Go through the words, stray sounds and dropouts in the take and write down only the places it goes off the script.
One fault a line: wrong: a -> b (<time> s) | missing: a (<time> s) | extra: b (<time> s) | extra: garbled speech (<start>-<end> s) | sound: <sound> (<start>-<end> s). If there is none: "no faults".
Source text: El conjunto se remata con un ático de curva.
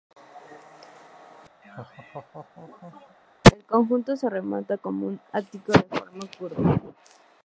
sound: laugh (1.6-3.2 s)
extra: forma (5.8 s)